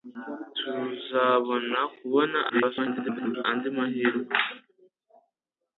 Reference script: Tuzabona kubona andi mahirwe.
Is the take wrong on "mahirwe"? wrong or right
right